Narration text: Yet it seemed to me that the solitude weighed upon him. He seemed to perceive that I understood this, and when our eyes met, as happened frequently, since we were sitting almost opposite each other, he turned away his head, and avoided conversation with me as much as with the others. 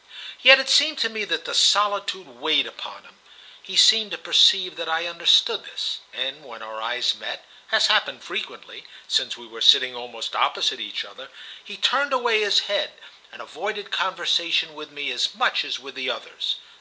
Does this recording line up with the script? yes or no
yes